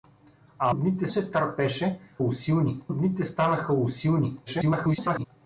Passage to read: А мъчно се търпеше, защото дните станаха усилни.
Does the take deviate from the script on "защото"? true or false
true